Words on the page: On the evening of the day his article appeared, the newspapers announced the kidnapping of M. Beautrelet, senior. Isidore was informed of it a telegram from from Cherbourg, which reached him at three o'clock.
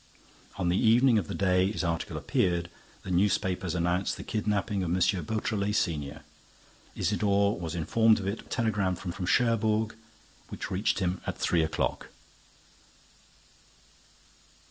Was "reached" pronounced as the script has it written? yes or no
yes